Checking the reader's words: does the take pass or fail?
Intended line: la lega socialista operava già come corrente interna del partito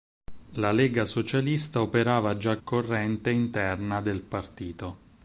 fail